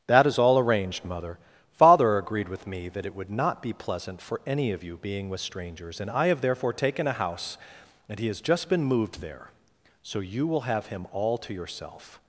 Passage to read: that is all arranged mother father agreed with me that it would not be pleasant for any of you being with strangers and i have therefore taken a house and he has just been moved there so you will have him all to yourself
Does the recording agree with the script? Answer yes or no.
yes